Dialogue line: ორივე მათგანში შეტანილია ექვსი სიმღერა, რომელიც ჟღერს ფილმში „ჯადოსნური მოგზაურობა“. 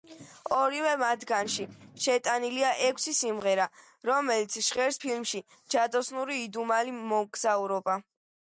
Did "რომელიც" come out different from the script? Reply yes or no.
no